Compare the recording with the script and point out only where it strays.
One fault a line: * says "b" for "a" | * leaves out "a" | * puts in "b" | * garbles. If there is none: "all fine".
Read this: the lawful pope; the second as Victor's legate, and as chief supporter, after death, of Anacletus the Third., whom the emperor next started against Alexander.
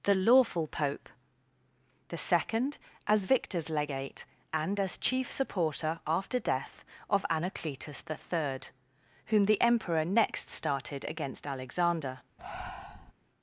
all fine